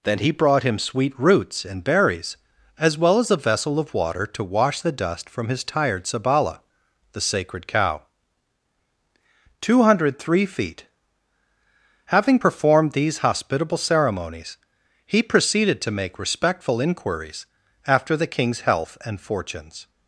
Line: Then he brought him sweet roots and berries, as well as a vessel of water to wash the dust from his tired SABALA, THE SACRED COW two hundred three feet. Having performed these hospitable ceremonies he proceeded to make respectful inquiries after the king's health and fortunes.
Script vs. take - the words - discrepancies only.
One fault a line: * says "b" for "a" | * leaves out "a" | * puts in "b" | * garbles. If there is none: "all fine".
all fine